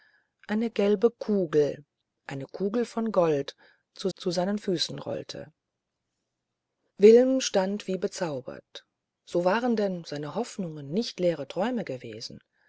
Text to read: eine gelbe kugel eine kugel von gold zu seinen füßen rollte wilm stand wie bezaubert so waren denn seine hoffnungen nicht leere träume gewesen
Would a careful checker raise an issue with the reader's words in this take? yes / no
yes